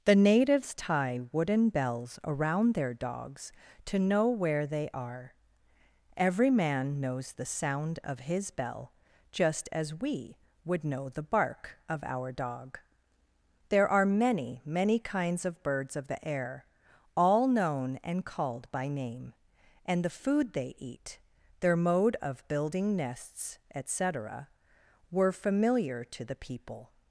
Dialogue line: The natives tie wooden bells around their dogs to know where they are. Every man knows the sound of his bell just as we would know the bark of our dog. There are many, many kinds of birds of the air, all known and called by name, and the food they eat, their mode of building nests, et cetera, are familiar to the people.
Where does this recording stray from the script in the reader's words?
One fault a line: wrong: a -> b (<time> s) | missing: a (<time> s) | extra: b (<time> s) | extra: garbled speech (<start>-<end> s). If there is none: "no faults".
wrong: are -> were (25.1 s)